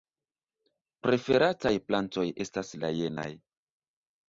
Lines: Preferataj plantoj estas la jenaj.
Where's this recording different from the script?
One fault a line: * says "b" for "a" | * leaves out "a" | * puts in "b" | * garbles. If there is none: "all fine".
all fine